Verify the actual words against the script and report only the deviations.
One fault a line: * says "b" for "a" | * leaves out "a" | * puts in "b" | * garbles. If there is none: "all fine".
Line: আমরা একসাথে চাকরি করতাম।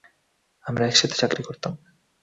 all fine